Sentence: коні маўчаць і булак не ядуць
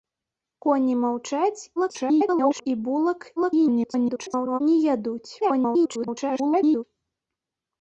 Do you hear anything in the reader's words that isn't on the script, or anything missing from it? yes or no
yes